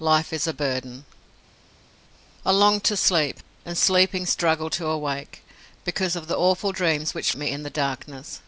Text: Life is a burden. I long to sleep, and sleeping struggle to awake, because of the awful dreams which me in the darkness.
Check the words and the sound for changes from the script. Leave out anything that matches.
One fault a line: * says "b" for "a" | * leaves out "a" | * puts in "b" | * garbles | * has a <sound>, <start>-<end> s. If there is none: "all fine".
all fine